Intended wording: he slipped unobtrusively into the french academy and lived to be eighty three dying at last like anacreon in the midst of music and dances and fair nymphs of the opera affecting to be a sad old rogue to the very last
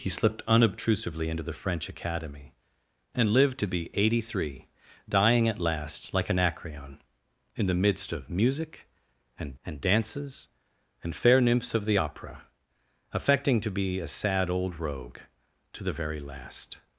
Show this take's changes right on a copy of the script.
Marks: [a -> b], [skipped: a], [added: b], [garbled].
he slipped unobtrusively into the french academy and lived to be eighty three dying at last like anacreon in the midst of music and [added: and] dances and fair nymphs of the opera affecting to be a sad old rogue to the very last